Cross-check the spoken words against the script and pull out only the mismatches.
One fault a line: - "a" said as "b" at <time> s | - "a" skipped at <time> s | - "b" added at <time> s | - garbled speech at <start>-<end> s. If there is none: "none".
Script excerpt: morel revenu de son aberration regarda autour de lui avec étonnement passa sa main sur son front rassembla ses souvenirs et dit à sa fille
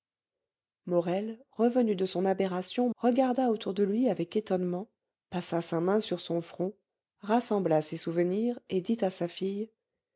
none